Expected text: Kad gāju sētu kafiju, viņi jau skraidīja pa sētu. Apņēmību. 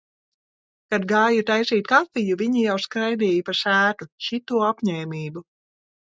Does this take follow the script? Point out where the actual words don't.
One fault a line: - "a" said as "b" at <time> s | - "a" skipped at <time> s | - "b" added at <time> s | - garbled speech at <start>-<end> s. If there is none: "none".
- "sētu" said as "taisīt" at 1.5 s
- "Šito" added at 4.3 s